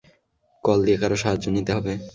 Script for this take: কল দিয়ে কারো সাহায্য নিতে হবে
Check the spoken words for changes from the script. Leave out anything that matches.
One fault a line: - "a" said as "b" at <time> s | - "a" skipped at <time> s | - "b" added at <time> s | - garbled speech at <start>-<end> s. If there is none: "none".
none